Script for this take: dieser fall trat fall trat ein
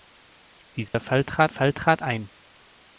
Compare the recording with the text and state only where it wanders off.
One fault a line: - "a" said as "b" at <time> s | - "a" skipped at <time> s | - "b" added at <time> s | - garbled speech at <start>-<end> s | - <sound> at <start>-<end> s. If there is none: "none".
- dropout at 0.9-0.9 s